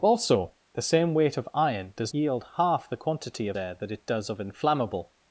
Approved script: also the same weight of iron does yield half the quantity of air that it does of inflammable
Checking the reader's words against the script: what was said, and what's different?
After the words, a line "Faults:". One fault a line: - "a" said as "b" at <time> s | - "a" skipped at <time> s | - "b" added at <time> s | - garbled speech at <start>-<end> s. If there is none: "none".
also the same weight of iron does yield half the quantity of air that it does of inflammable
Faults:
none